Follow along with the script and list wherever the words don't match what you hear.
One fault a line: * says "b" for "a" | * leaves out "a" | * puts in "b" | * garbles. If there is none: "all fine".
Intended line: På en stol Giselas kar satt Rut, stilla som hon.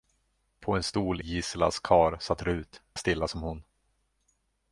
all fine